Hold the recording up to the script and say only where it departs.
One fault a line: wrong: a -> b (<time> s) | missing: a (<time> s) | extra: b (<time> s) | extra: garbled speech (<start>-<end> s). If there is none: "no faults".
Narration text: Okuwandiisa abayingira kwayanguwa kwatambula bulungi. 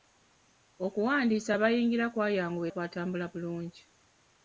no faults